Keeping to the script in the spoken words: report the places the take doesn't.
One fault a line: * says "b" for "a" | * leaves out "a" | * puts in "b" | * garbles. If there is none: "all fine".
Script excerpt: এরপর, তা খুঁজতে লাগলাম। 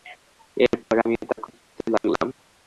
* puts in "আমিও"